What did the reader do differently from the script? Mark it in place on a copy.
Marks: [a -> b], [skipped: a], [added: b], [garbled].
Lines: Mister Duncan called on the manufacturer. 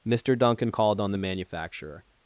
Mister Duncan called on the manufacturer.